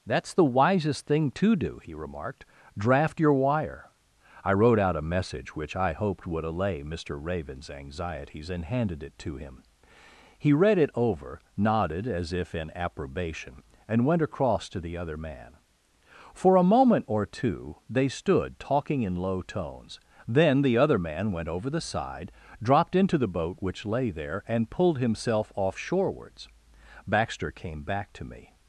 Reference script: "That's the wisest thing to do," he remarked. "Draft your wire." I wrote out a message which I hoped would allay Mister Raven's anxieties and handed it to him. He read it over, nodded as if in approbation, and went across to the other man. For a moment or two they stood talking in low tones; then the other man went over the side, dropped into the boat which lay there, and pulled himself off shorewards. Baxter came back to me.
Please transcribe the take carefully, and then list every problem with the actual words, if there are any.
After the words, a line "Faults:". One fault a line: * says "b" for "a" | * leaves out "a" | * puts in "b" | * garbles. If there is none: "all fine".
"That's the wisest thing to do," he remarked. "Draft your wire." I wrote out a message which I hoped would allay Mister Raven's anxieties and handed it to him. He read it over, nodded as if in approbation, and went across to the other man. For a moment or two they stood talking in low tones; then the other man went over the side, dropped into the boat which lay there, and pulled himself off shorewards. Baxter came back to me.
Faults:
all fine